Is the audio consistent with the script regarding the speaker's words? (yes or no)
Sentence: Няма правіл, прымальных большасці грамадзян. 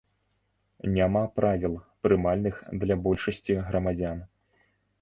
no